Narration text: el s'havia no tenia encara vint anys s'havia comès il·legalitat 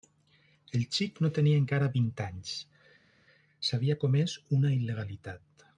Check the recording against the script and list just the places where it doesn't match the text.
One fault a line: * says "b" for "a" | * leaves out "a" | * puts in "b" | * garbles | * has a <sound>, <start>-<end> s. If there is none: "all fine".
* says "xic" for "s'havia"
* puts in "una"